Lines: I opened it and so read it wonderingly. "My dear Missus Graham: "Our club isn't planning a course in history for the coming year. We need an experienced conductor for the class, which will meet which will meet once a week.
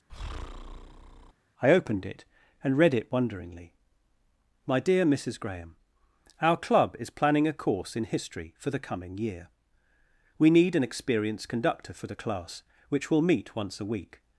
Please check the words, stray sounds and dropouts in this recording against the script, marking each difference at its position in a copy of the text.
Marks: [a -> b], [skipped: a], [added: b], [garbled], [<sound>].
[breath] I opened it and [skipped: so] read it wonderingly. "My dear Missus Graham: "Our club [isn't -> is] planning a course in history for the coming year. We need an experienced conductor for the class, which will meet [skipped: which will meet] once a week.